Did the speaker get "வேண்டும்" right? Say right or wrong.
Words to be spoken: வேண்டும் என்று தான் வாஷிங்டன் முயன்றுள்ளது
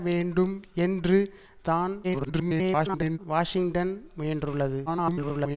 right